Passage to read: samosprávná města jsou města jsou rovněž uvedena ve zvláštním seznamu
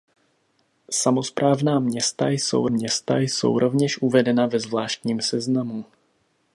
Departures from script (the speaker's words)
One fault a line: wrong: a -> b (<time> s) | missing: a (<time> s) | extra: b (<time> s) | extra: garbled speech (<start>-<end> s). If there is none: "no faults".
no faults